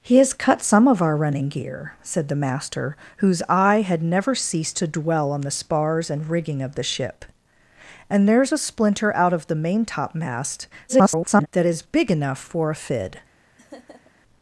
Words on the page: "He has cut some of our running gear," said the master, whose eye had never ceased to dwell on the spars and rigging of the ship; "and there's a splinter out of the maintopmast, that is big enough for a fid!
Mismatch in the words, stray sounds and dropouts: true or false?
true